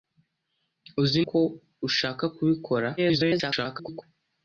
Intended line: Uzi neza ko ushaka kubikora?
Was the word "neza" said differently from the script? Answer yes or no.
yes